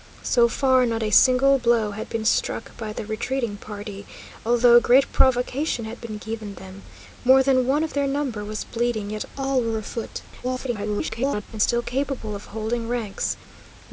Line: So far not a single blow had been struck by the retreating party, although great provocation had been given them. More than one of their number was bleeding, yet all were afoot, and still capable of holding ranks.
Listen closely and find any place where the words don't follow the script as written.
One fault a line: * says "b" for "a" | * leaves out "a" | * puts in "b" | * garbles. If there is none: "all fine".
* garbles